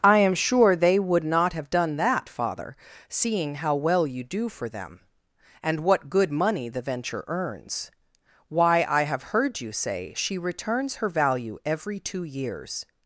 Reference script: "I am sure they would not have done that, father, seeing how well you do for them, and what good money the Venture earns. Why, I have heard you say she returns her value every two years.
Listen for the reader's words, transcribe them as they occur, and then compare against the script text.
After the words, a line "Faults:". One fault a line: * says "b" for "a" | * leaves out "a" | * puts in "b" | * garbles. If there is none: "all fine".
"I am sure they would not have done that, father, seeing how well you do for them, and what good money the Venture earns. Why, I have heard you say she returns her value every two years.
Faults:
all fine